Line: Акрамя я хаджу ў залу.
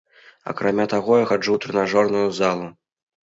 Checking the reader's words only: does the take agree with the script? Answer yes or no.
no